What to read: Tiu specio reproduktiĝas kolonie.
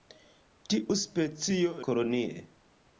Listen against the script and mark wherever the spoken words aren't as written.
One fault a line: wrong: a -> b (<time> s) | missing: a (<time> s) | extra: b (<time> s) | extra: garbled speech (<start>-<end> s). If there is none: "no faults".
missing: reproduktiĝas (1.7 s)